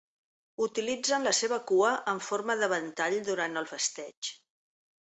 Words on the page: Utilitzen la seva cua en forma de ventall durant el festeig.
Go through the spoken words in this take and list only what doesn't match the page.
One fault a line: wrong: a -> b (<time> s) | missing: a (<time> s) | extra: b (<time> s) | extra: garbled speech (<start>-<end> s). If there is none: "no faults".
no faults